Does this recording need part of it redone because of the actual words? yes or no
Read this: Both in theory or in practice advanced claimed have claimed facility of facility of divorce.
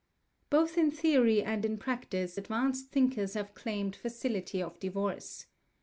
yes